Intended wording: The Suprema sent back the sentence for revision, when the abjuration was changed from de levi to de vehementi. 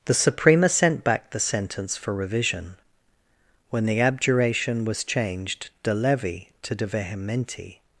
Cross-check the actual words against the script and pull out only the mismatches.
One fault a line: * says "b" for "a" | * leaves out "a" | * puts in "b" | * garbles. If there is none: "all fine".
* leaves out "from"